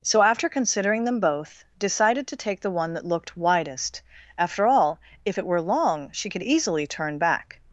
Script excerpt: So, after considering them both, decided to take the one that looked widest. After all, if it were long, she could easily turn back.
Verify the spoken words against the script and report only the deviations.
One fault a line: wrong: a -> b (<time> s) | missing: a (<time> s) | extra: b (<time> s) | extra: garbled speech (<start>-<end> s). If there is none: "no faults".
no faults